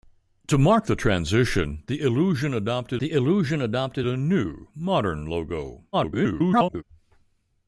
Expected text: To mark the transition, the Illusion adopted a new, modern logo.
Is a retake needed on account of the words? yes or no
yes